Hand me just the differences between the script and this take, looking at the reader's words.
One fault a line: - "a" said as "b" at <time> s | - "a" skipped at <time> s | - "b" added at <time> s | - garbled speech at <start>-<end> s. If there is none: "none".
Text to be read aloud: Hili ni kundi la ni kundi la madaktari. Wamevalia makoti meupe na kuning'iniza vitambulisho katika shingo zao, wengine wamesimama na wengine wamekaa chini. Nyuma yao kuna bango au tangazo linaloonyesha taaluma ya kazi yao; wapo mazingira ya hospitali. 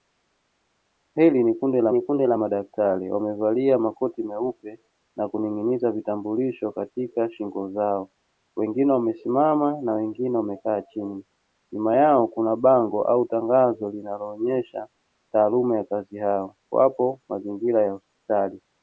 none